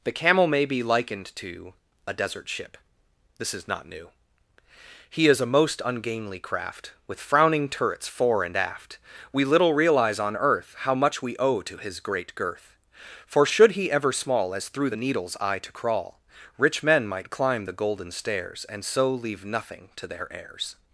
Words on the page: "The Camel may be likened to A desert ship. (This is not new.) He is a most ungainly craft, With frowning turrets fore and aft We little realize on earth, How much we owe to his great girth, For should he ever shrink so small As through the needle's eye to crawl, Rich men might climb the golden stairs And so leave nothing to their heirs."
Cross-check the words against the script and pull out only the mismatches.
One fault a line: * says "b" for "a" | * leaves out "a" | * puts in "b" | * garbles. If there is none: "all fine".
* leaves out "shrink so"